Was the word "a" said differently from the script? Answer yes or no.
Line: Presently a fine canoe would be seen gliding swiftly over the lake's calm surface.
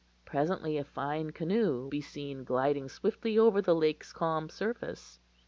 no